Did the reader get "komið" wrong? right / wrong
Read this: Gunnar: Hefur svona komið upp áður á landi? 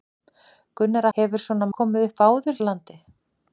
right